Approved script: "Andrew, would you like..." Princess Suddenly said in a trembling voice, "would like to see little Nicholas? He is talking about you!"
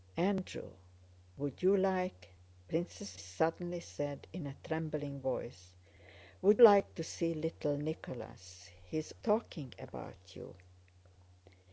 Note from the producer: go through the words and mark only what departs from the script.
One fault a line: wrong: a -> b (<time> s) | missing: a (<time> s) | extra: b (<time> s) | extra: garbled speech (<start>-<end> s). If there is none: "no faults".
no faults